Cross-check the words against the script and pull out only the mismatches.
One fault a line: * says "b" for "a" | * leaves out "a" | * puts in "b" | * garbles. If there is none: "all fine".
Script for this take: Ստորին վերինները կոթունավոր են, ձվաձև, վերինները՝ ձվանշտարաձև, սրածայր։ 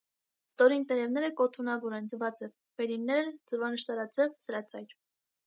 * says "տերևները" for "վերինները"